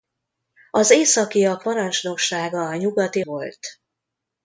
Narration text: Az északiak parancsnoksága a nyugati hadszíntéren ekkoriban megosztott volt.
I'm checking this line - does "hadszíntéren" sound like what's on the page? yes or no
no